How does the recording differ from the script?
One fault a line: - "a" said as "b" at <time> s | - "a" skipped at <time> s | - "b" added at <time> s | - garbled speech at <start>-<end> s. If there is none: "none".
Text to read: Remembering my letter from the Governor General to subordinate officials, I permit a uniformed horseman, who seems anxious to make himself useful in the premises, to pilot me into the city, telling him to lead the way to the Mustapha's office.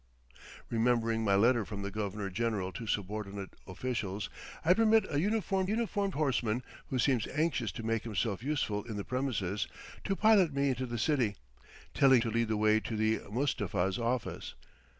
- "uniformed" added at 5.7 s
- "him" skipped at 12.2 s